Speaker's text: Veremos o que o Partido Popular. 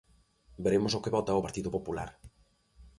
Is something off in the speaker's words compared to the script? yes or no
yes